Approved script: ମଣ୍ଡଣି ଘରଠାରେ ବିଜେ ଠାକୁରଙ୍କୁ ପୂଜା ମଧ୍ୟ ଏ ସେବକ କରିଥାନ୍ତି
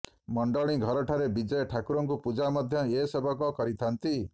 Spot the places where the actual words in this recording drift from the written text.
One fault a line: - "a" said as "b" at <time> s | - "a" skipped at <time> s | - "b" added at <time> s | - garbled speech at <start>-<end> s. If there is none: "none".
none